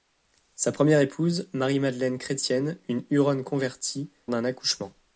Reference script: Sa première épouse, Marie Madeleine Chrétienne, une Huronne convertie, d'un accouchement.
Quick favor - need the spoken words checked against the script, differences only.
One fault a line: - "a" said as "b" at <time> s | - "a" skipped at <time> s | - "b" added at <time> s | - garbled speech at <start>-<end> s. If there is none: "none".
none